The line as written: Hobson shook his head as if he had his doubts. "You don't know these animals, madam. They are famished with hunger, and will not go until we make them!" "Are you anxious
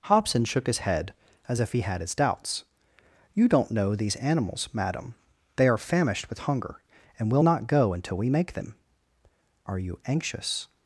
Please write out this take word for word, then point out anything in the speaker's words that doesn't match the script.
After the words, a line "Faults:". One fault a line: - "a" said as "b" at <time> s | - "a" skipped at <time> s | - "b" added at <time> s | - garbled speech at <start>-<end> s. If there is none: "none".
Hobson shook his head as if he had his doubts. "You don't know these animals, madam. They are famished with hunger, and will not go until we make them!" "Are you anxious
Faults:
none